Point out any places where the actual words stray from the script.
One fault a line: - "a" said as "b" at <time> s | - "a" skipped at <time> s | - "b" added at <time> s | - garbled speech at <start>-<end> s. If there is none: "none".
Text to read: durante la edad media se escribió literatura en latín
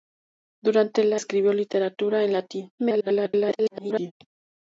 - "edad media se" skipped at 1.2 s
- garbled speech at 2.8-4.1 s